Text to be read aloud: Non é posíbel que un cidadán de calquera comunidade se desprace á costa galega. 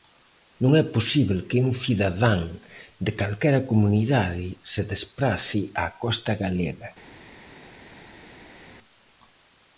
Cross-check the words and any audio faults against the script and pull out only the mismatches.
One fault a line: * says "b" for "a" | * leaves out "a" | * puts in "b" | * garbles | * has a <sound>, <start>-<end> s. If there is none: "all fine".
all fine